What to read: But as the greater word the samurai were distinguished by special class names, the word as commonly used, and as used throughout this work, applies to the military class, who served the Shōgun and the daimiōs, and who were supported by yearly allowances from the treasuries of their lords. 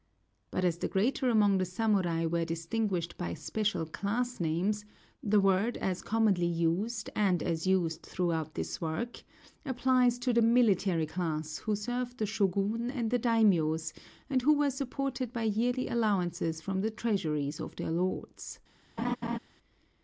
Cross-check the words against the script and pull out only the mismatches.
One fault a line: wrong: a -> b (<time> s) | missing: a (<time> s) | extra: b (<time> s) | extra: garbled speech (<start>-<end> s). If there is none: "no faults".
wrong: word -> among (1.3 s)